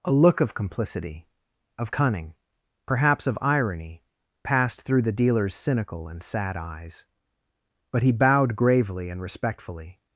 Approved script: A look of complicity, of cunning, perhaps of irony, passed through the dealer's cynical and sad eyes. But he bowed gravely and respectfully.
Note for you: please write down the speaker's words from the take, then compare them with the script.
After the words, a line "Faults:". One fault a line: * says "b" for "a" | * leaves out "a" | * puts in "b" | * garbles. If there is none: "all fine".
A look of complicity, of cunning, perhaps of irony, passed through the dealer's cynical and sad eyes. But he bowed gravely and respectfully.
Faults:
all fine